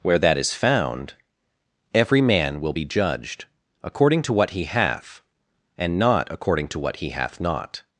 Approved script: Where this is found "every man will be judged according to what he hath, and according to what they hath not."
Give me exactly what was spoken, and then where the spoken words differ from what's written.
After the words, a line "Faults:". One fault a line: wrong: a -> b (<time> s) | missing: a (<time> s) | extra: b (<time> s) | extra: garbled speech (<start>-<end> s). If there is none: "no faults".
Where that is found "every man will be judged according to what he hath, and not according to what he hath not."
Faults:
wrong: this -> that (0.2 s)
extra: not (6.0 s)
wrong: they -> he (7.0 s)